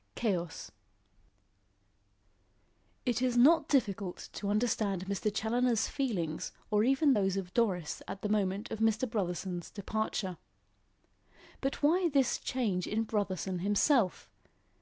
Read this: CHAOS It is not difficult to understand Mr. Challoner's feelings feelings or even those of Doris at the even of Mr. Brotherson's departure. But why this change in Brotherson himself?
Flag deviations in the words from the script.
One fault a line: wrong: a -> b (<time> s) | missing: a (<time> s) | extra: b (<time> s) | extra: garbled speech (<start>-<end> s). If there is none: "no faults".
missing: feelings (6.5 s)
wrong: even -> moment (8.3 s)